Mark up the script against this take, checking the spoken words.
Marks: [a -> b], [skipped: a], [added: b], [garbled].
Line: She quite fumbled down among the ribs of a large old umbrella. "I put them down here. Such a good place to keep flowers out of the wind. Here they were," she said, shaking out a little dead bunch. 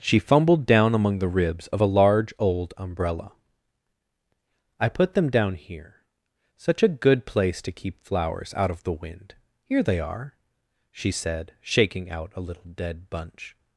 She [skipped: quite] fumbled down among the ribs of a large old umbrella. "I put them down here. Such a good place to keep flowers out of the wind. Here they [were," -> are] she said, shaking out a little dead bunch.